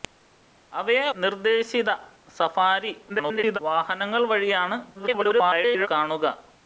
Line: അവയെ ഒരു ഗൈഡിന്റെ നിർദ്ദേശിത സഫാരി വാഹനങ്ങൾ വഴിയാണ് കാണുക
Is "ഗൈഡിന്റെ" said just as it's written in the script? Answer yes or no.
no